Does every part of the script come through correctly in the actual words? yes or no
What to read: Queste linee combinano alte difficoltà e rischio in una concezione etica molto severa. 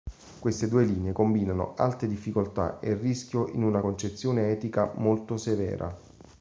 no